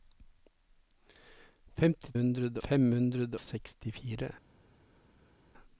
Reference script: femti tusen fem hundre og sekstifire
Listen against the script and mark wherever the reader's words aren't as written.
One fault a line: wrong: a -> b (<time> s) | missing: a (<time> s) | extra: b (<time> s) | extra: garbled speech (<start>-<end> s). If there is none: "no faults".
wrong: tusen -> hundre (2.1 s)
missing: og (3.4 s)